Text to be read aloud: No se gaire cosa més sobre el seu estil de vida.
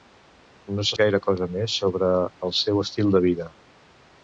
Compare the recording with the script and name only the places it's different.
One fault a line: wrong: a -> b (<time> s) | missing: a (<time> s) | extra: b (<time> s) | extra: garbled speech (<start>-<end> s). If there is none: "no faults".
no faults